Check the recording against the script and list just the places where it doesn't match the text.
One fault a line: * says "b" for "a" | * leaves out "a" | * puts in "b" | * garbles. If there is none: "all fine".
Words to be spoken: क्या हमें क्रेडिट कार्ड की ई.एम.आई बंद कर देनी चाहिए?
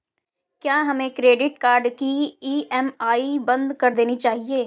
all fine